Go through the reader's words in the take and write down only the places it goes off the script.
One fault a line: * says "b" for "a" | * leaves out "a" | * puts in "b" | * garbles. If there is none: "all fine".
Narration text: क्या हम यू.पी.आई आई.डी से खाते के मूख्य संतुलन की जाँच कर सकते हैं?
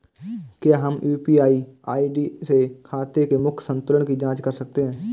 all fine